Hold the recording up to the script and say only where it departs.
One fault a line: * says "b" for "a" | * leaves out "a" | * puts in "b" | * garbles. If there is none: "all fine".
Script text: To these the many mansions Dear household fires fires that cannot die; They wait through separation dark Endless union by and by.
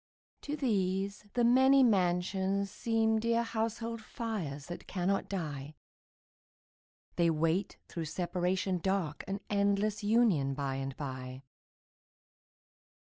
* puts in "seem"
* leaves out "fires"
* puts in "An"